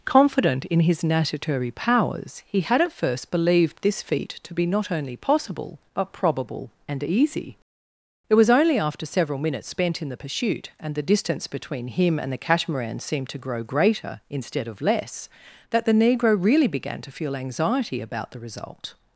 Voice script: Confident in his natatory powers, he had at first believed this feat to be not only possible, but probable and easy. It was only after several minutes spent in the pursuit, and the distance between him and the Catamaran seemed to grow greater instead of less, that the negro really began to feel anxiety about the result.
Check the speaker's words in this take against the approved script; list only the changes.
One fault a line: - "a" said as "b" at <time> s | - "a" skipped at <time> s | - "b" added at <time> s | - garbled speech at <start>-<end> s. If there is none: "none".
none